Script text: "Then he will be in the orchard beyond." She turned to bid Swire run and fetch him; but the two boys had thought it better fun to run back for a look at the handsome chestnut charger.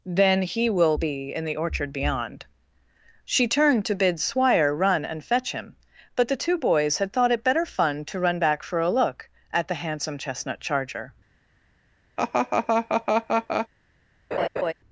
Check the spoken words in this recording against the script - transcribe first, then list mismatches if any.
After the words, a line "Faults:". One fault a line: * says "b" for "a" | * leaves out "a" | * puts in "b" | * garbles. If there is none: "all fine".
"Then he will be in the orchard beyond." She turned to bid Swire run and fetch him; but the two boys had thought it better fun to run back for a look at the handsome chestnut charger.
Faults:
all fine